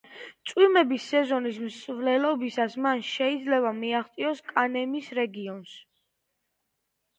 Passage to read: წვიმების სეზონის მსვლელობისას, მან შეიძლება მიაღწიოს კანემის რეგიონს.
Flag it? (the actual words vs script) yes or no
no